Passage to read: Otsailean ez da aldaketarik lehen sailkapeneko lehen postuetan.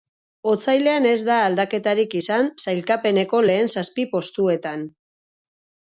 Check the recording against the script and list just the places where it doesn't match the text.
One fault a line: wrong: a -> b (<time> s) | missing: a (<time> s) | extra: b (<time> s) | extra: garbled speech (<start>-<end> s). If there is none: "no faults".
wrong: lehen -> izan (2.2 s)
extra: zazpi (3.8 s)